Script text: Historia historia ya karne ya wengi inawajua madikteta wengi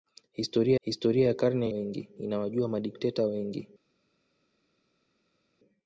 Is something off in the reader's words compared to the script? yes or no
no